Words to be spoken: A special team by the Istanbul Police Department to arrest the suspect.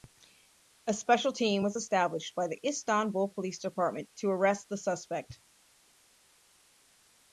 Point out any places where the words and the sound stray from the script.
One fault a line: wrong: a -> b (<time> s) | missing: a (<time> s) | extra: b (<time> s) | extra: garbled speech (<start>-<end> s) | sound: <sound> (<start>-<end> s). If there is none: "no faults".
extra: was established (1.6 s)